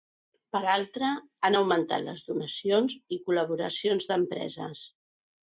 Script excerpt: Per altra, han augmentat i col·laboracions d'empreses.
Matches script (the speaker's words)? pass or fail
fail